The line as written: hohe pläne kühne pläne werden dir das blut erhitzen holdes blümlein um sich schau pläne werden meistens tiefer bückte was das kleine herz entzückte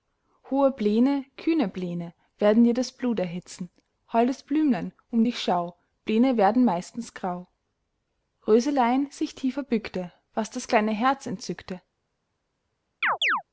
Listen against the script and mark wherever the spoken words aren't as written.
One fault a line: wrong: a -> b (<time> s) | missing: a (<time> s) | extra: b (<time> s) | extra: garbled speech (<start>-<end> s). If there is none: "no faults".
wrong: sich -> dich (5.2 s)
extra: grau röselein sich (7.1 s)